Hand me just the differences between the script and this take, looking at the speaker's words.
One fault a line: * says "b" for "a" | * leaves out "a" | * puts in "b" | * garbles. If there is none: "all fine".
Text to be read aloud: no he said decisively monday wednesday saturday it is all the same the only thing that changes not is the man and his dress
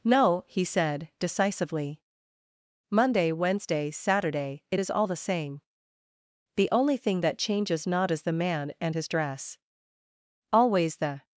* puts in "always the"